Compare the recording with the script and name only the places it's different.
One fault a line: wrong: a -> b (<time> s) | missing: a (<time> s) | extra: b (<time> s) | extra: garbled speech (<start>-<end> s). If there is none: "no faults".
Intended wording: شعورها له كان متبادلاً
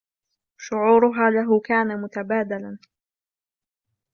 no faults